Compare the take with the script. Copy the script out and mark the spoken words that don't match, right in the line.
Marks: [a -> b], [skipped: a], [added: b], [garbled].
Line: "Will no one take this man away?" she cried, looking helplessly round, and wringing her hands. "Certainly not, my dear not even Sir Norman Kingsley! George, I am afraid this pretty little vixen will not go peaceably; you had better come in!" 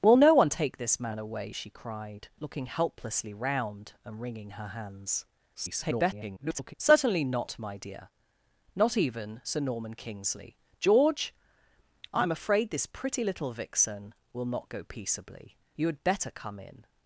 "Will no one take this man away?" she cried, looking helplessly round, and wringing her hands. [garbled] "Certainly not, my dear not even Sir Norman Kingsley! George, I am afraid this pretty little vixen will not go peaceably; you had better come in!"